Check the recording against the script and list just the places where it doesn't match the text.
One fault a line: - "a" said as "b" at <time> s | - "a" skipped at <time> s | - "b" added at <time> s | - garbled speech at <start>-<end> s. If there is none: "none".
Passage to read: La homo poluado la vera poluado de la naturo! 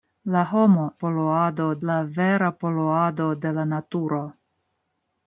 none